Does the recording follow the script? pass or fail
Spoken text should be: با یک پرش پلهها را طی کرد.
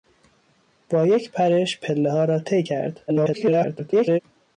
fail